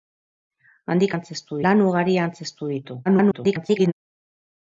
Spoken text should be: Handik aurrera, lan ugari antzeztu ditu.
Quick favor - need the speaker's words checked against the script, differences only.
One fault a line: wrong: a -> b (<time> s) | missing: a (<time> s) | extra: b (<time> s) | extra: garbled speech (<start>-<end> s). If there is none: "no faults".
wrong: aurrera -> antzeztu (1.1 s)
extra: garbled speech (3.1-3.9 s)